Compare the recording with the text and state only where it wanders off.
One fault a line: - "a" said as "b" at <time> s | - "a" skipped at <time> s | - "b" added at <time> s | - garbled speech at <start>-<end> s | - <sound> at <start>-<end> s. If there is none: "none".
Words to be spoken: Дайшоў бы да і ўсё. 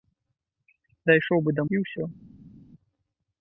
none